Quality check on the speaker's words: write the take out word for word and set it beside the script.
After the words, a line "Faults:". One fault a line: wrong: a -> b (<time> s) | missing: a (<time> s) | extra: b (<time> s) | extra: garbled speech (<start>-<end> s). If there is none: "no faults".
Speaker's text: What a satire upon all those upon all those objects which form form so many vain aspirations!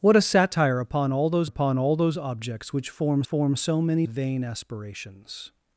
What a satire upon all those upon all those objects which form form so many vain aspirations!
Faults:
no faults